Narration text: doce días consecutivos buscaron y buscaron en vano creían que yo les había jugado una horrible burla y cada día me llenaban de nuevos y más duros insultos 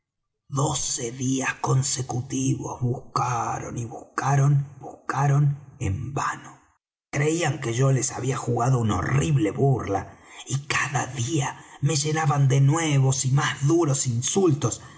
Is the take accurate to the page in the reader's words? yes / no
no